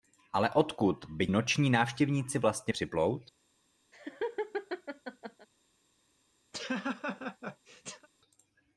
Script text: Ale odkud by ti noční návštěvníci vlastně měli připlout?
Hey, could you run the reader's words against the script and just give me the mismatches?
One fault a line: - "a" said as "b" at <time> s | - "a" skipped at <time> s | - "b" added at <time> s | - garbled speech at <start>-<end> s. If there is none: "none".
- "ti" skipped at 1.3 s
- "měli" skipped at 2.7 s